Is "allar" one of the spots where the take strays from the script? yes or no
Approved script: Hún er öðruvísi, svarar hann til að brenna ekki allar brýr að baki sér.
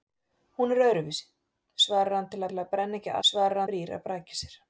yes